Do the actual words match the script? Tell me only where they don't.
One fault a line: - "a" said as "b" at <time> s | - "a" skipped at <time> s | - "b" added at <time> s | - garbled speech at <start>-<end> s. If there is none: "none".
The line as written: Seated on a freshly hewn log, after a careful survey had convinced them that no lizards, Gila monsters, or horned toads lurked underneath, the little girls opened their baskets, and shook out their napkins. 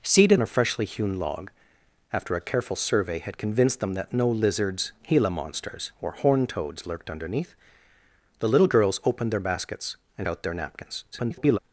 - "on" skipped at 0.4 s
- "shook" skipped at 10.3 s
- garbled speech at 11.1-11.6 s